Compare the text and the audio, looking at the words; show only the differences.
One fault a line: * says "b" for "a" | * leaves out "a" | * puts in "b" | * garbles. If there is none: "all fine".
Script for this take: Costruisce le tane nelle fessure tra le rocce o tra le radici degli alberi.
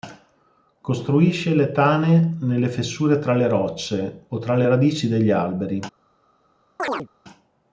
all fine